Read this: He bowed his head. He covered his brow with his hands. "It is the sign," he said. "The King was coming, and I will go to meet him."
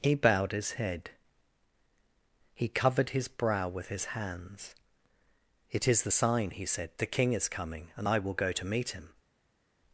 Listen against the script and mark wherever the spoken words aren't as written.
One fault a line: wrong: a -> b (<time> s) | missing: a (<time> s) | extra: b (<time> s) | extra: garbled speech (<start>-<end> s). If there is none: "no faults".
wrong: was -> is (7.3 s)